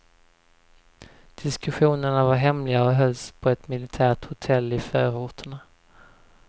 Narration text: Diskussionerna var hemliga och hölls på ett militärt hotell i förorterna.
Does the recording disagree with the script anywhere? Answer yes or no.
no